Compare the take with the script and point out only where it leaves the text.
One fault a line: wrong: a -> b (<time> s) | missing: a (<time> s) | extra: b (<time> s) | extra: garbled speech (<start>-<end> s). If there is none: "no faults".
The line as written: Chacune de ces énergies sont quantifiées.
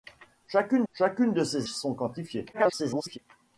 extra: chacune (0.9 s)
missing: énergies (1.7 s)
extra: garbled speech (2.5-3.2 s)